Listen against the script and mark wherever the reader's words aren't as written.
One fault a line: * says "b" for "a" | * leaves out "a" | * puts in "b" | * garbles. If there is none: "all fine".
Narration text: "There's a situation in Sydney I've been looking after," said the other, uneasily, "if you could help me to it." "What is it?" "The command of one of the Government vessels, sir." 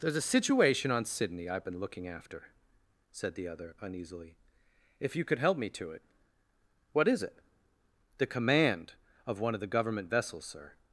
* says "on" for "in"